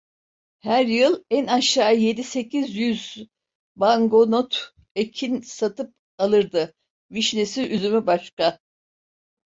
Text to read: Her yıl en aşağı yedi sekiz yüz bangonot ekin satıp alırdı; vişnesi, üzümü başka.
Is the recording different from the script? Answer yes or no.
no